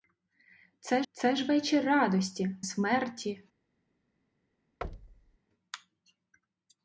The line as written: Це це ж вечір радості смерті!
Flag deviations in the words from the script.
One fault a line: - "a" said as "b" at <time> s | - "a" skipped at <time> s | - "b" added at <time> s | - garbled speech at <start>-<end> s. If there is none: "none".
none